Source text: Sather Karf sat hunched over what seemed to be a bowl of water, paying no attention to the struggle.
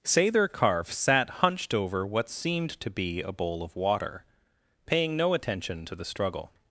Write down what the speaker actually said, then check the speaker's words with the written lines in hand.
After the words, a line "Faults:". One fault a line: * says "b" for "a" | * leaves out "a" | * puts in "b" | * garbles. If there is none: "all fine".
Sather Karf sat hunched over what seemed to be a bowl of water, paying no attention to the struggle.
Faults:
all fine